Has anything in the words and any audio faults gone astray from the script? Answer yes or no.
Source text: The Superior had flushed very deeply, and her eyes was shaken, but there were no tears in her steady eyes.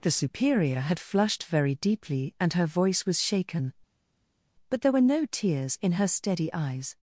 yes